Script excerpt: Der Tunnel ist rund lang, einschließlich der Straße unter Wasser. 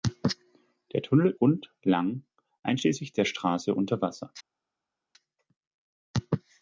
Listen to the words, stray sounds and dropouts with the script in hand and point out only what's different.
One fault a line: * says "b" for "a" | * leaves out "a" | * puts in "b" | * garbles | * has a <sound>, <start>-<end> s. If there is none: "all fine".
* leaves out "ist"